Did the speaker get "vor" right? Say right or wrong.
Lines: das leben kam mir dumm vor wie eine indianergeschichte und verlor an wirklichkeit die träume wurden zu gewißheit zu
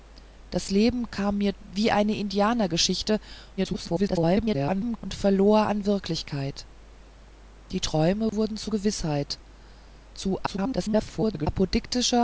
wrong